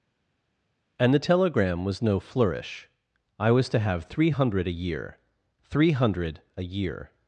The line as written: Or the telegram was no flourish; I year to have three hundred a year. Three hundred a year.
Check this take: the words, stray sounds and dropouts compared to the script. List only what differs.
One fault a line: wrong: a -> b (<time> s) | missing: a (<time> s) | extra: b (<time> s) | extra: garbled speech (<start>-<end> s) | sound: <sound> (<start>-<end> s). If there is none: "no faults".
wrong: Or -> And (1.0 s)
wrong: year -> was (3.5 s)